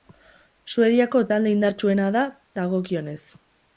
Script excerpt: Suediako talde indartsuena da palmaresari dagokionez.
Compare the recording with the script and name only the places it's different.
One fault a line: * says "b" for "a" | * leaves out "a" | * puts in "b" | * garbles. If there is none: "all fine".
* leaves out "palmaresari"